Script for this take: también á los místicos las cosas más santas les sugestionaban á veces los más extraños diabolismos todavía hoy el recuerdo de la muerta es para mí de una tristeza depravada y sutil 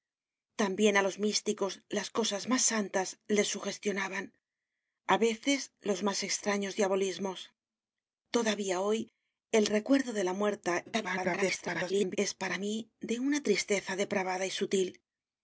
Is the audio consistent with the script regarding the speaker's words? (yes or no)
no